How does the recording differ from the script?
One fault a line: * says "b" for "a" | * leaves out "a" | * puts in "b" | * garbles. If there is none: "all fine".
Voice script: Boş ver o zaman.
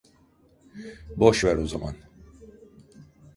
all fine